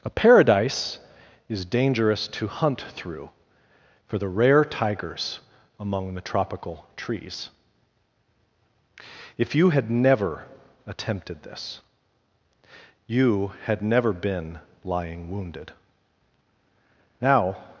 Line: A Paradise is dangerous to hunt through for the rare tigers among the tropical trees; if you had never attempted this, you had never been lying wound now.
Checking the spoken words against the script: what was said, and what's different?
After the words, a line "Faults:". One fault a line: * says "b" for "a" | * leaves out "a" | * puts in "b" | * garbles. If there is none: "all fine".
A Paradise is dangerous to hunt through for the rare tigers among the tropical trees; if you had never attempted this, you had never been lying wounded now.
Faults:
* says "wounded" for "wound"